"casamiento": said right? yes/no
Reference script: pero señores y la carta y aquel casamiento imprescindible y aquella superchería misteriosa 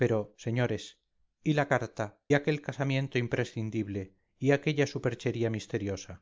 yes